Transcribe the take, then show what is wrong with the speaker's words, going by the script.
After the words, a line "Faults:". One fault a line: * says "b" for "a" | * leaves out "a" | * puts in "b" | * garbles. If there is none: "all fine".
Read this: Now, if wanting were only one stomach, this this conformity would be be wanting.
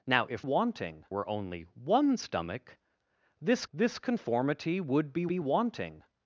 Now, if wanting were only one stomach, this this conformity would be be wanting.
Faults:
all fine